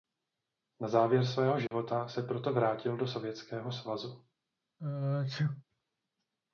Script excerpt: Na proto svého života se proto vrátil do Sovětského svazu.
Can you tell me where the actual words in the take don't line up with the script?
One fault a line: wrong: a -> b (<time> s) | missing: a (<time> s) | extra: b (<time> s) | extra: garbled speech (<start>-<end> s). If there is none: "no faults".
wrong: proto -> závěr (0.9 s)